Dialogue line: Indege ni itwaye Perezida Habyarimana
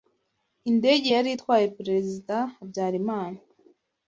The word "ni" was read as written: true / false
false